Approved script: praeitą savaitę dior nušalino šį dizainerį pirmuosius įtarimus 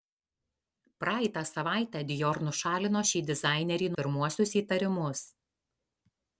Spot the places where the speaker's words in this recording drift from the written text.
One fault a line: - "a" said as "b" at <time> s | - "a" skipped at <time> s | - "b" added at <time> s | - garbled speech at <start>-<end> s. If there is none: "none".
none